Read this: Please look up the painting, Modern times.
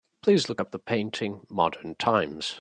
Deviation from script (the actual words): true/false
false